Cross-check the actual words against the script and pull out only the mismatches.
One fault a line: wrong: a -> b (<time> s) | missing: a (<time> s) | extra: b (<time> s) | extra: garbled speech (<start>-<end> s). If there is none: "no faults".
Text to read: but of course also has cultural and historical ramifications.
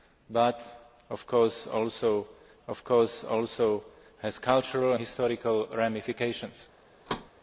extra: of course also (2.7 s)
missing: and (4.9 s)